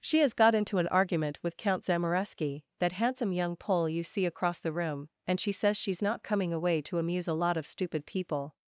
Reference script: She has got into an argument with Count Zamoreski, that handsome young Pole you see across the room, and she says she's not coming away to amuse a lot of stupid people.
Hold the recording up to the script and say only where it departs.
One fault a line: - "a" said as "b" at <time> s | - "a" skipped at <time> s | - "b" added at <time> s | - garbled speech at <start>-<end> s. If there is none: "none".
none